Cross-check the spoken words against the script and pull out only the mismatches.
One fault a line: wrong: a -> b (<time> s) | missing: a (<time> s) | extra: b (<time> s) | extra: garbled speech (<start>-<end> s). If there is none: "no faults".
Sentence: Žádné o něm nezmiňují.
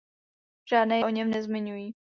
no faults